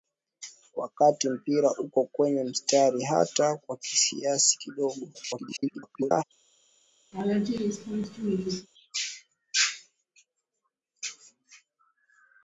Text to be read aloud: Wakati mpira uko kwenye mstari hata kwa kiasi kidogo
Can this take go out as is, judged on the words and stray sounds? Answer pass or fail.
fail